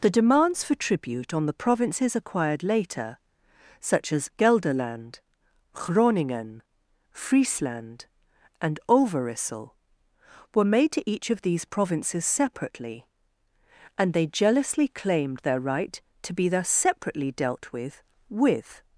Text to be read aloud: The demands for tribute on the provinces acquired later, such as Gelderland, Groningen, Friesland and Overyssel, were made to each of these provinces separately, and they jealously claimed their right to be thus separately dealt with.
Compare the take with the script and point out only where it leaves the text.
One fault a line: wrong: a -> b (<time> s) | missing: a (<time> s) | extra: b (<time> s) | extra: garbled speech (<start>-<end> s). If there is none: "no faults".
extra: with (18.3 s)